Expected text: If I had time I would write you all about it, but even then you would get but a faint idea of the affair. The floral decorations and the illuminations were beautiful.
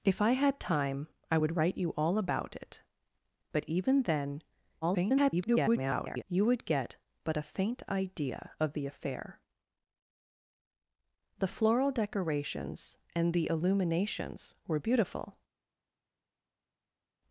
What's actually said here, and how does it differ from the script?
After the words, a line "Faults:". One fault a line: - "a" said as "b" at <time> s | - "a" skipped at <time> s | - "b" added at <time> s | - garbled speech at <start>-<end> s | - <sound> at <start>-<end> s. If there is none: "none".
If I had time I would write you all about it, but even then [garbled] you would get but a faint idea of the affair. The floral decorations and the illuminations were beautiful.
Faults:
- garbled speech at 4.8-6.2 s